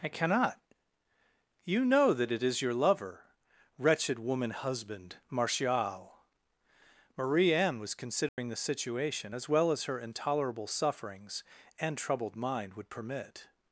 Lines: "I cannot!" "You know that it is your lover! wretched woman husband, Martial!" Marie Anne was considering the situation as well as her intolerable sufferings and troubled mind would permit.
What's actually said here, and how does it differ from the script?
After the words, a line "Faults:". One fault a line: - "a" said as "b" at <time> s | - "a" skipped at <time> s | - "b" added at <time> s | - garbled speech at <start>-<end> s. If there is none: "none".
"I cannot!" "You know that it is your lover! wretched woman husband, Martial!" Marie Anne was considering the situation as well as her intolerable sufferings and troubled mind would permit.
Faults:
none